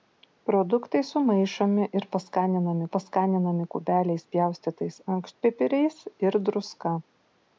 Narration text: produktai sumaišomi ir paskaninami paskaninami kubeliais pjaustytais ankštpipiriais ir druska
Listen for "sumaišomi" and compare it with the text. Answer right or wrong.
right